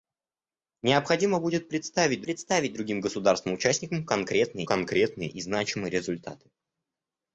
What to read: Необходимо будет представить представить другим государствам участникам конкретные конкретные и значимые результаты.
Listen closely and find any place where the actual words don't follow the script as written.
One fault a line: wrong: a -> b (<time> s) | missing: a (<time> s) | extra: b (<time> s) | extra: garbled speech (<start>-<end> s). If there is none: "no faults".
no faults